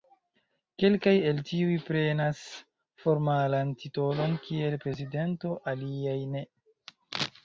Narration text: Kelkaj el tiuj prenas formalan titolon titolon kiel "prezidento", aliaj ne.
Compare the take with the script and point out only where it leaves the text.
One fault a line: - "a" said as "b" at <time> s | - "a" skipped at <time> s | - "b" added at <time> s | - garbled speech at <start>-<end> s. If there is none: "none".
- "titolon" skipped at 4.3 s